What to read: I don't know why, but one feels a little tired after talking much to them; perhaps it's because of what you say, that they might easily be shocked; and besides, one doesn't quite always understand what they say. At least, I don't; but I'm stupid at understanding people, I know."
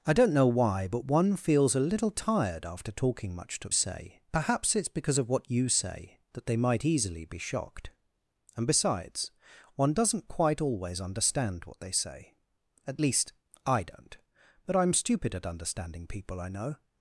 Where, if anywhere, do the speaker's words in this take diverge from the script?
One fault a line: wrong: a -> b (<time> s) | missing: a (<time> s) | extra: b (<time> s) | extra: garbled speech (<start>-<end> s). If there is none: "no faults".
wrong: them -> say (3.7 s)